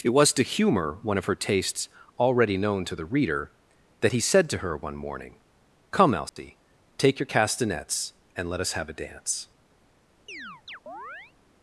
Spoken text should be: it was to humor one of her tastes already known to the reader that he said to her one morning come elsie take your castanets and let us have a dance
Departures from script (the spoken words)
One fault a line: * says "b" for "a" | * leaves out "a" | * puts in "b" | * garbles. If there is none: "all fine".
all fine